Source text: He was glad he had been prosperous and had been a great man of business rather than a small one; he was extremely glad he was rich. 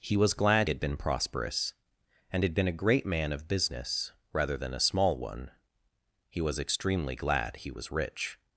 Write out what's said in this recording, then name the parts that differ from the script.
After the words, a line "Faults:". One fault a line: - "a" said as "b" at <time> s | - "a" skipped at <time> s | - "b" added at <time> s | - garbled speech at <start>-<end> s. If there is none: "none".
He was glad had been prosperous and had been a great man of business rather than a small one; he was extremely glad he was rich.
Faults:
- "he" skipped at 0.7 s